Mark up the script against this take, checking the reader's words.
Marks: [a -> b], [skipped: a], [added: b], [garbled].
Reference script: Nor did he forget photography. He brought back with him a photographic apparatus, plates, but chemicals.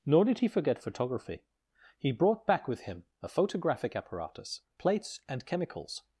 Nor did he forget photography. He brought back with him a photographic apparatus, plates, [but -> and] chemicals.